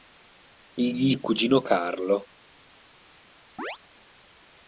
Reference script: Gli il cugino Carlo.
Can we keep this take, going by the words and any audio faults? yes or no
no